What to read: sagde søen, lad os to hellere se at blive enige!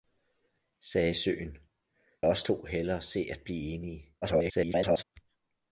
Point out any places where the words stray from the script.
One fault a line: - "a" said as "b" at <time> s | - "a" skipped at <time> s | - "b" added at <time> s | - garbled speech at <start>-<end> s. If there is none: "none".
- "lad" skipped at 1.6 s
- garbled speech at 4.2-5.0 s